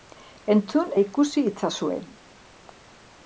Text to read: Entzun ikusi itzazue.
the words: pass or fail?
pass